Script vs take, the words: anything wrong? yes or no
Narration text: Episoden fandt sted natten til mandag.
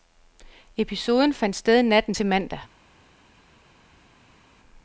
no